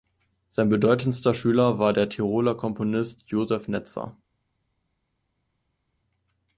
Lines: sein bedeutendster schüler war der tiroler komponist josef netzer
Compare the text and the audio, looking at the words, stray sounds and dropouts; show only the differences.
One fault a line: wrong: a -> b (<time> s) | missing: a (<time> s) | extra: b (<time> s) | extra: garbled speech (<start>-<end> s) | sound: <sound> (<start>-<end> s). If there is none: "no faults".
no faults